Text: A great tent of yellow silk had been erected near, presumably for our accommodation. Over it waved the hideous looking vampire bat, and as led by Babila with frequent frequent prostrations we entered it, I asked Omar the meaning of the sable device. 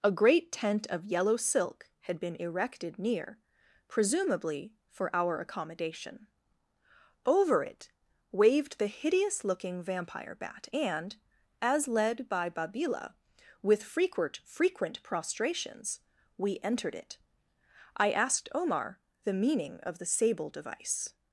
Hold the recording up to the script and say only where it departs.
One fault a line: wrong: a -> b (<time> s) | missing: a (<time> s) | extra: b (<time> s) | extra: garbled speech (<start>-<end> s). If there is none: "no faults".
no faults